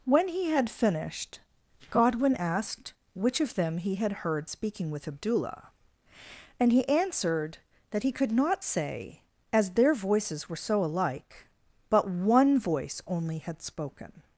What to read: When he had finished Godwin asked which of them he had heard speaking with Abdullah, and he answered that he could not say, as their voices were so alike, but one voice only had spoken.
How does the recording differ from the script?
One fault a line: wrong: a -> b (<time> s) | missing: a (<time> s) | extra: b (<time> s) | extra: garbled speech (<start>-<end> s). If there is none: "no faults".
no faults